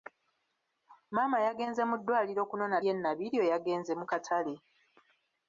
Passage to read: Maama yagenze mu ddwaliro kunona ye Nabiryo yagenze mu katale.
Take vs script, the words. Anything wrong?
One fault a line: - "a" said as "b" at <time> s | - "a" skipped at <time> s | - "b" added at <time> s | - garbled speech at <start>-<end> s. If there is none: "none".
none